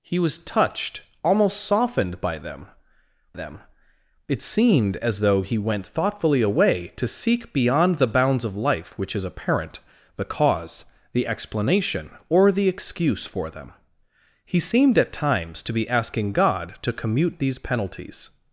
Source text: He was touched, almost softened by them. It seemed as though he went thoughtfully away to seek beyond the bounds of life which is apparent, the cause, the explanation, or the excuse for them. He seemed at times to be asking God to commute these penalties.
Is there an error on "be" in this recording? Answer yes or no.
no